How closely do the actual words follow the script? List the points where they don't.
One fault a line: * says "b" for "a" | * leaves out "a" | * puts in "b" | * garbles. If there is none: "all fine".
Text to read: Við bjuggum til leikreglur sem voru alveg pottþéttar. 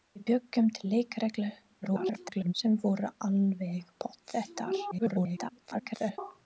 * garbles
* garbles